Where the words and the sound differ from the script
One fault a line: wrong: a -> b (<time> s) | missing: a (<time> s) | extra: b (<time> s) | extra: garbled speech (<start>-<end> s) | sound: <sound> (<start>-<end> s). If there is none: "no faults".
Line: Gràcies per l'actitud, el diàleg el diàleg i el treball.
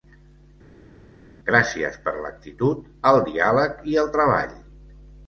missing: el diàleg (3.8 s)